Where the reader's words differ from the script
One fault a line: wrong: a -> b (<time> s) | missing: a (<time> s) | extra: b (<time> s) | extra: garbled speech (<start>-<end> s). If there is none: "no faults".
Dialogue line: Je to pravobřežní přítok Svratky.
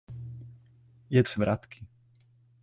missing: to pravobřežní přítok (1.2 s)